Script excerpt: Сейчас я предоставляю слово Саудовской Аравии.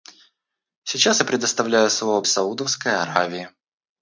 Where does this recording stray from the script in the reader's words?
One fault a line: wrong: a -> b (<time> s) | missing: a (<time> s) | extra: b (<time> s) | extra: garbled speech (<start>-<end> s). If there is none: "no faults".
no faults